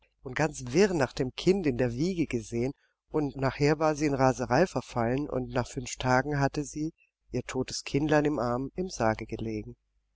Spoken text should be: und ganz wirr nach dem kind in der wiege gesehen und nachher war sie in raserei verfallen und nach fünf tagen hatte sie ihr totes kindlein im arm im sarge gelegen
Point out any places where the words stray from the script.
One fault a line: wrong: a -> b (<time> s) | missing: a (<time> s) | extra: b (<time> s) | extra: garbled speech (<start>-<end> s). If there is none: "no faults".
no faults